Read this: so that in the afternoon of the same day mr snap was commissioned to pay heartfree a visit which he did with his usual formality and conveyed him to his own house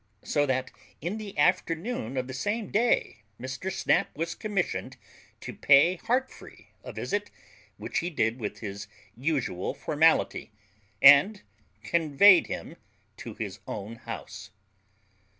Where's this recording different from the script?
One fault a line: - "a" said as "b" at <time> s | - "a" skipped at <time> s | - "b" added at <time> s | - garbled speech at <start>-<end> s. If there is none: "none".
none